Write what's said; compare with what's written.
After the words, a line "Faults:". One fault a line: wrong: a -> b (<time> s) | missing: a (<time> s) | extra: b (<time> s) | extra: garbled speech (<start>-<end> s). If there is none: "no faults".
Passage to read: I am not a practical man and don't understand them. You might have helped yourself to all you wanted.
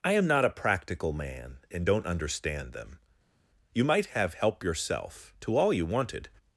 I am not a practical man and don't understand them. You might have help yourself to all you wanted.
Faults:
wrong: helped -> help (4.3 s)